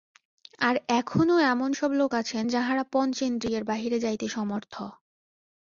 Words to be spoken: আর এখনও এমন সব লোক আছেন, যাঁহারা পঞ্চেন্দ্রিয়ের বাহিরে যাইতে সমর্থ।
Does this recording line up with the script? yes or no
yes